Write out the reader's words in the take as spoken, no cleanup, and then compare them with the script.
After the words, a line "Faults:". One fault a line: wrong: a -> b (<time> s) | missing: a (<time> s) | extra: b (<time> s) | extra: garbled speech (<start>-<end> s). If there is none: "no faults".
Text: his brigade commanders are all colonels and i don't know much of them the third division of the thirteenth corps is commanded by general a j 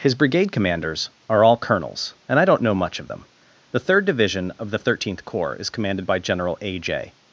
his brigade commanders are all colonels and i don't know much of them the third division of the thirteenth corps is commanded by general a j
Faults:
no faults